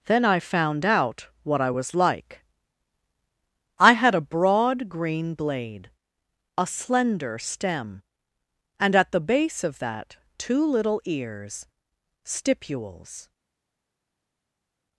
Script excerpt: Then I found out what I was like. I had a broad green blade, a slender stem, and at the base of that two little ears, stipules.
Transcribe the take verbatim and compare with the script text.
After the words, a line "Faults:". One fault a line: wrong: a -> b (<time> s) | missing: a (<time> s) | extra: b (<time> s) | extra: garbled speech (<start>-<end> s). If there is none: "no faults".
Then I found out what I was like. I had a broad green blade, a slender stem, and at the base of that two little ears, stipules.
Faults:
no faults